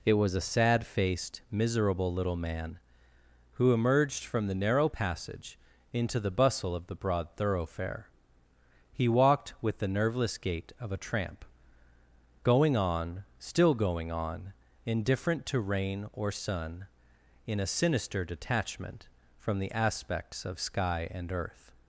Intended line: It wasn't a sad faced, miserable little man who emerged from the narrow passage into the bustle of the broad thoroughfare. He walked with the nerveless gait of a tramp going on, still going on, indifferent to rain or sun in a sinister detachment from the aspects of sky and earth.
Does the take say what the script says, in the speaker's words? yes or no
no